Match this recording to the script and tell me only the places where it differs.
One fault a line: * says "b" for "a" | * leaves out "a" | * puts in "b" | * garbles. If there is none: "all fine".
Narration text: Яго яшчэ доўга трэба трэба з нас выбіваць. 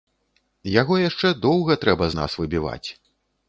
* leaves out "трэба"